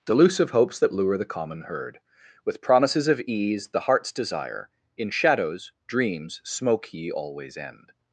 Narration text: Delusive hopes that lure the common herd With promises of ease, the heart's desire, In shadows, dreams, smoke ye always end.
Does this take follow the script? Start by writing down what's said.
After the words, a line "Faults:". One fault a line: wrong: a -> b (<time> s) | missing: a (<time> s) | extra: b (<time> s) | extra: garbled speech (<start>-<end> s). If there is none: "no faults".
Delusive hopes that lure the common herd With promises of ease, the heart's desire, In shadows, dreams, smoke ye always end.
Faults:
no faults